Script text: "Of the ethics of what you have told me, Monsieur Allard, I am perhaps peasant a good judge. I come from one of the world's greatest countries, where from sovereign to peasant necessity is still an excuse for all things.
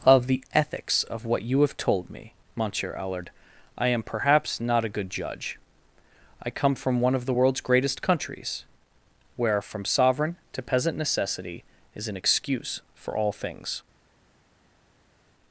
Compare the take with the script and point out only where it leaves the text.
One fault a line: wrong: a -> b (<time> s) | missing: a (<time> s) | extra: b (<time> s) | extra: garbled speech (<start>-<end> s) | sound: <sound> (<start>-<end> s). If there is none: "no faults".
wrong: peasant -> not (4.6 s)
missing: still (12.1 s)